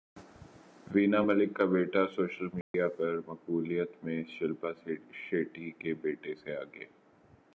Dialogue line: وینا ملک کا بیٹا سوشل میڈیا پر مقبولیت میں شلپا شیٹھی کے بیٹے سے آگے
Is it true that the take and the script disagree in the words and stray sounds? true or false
true